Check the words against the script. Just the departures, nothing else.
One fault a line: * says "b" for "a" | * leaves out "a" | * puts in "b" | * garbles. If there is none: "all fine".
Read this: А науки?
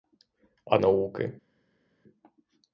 all fine